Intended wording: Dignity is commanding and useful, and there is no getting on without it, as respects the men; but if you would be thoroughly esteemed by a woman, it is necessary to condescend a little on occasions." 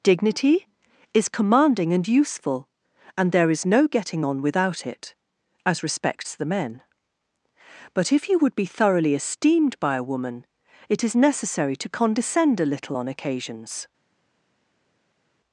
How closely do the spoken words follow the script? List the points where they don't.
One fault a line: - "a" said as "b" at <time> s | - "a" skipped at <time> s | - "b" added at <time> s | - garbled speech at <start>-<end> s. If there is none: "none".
none